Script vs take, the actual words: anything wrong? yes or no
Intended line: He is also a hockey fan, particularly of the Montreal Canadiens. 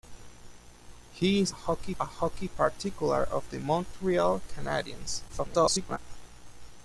yes